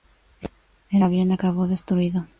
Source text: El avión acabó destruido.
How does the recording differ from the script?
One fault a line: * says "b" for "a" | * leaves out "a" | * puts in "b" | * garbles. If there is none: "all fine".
all fine